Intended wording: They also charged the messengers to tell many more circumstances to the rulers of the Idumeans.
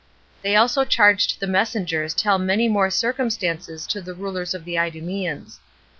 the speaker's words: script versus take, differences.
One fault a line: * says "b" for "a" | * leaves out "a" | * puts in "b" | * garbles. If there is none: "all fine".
* leaves out "to"